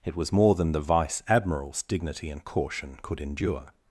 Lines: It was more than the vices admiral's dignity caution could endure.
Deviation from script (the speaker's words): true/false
true